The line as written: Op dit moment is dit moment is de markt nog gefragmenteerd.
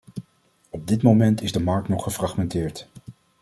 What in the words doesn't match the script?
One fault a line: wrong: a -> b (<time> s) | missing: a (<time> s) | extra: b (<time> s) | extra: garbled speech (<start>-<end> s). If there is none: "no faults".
missing: dit moment is (1.5 s)